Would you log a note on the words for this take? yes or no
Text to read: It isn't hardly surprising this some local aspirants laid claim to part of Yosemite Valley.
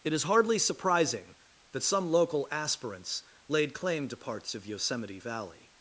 yes